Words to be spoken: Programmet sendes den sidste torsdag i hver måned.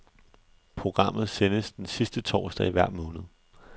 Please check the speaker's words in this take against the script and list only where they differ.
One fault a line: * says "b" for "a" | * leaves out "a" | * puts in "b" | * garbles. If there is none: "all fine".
all fine